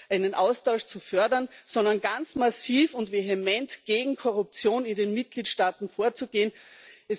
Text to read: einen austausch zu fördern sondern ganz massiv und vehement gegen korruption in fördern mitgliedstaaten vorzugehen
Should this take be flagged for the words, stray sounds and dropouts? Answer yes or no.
yes